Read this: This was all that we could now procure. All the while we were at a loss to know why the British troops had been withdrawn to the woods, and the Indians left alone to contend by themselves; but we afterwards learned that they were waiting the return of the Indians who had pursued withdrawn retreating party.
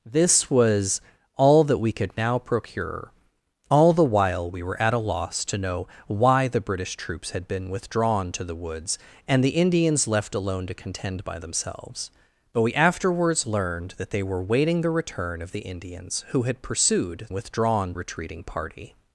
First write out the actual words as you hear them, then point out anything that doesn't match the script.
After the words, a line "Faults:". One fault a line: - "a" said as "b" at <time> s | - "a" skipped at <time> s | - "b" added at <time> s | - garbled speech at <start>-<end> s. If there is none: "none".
This was all that we could now procure. All the while we were at a loss to know why the British troops had been withdrawn to the woods, and the Indians left alone to contend by themselves; but we afterwards learned that they were waiting the return of the Indians who had pursued withdrawn retreating party.
Faults:
none